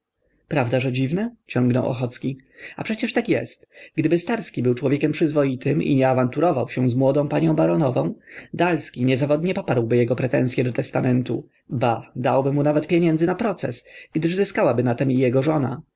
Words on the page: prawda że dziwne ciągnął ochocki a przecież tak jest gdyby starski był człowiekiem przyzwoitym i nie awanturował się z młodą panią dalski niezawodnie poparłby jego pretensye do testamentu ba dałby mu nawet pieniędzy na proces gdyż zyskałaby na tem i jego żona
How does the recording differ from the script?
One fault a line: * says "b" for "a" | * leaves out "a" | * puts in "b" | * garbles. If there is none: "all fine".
* puts in "baronową"